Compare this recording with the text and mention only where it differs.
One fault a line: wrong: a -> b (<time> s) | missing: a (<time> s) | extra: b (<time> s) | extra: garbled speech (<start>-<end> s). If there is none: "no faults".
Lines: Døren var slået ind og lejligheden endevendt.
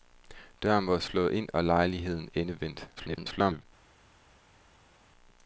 extra: garbled speech (3.0-3.7 s)